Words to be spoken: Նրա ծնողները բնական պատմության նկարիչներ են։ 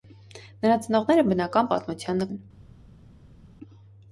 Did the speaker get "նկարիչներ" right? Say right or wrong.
wrong